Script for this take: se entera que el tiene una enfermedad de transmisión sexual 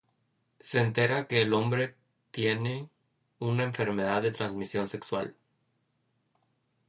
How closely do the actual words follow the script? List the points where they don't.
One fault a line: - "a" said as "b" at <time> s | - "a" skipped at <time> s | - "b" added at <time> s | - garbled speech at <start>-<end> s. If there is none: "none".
- "hombre" added at 1.5 s